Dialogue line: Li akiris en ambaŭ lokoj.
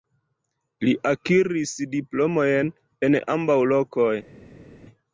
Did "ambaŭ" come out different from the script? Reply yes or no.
no